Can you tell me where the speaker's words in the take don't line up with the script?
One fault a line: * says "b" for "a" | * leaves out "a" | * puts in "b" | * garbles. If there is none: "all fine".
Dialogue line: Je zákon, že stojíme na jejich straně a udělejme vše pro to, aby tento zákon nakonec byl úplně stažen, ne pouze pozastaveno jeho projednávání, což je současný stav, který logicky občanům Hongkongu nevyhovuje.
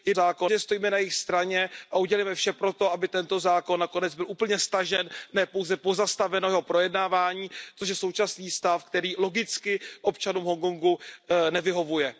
all fine